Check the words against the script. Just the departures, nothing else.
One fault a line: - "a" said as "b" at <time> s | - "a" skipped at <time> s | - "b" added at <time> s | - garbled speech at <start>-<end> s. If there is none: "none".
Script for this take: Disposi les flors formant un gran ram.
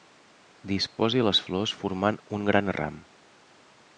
none